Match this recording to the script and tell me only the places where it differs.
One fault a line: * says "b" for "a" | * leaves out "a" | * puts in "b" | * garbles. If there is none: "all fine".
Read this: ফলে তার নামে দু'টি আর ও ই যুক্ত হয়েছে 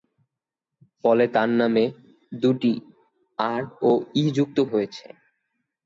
all fine